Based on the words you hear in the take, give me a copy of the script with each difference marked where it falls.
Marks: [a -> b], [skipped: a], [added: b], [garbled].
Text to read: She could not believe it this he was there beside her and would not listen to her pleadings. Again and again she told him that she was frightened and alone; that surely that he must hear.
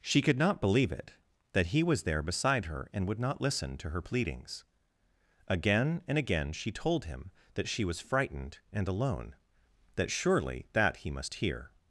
She could not believe it [this -> that] he was there beside her and would not listen to her pleadings. Again and again she told him that she was frightened and alone; that surely that he must hear.